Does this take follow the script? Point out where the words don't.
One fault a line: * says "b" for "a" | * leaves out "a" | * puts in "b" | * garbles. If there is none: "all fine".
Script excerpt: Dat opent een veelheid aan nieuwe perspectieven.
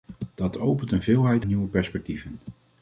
* leaves out "aan"